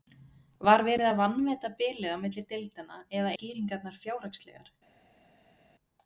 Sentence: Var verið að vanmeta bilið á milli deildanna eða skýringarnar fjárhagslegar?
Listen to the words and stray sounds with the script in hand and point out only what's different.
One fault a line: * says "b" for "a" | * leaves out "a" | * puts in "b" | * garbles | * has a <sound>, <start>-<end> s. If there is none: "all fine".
all fine